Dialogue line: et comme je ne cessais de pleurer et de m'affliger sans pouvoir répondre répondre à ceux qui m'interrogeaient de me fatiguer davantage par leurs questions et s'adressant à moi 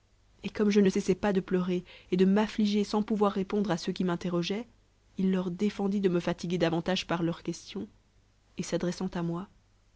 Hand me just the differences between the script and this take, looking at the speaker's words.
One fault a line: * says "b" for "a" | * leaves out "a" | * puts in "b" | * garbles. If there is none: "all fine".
* puts in "pas"
* leaves out "répondre"
* puts in "il leur défendit"